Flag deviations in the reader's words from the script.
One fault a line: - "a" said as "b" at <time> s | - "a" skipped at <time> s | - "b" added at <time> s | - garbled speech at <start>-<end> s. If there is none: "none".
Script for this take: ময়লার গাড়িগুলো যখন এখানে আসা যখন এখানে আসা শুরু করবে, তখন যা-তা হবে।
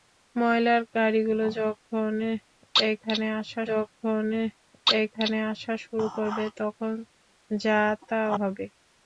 none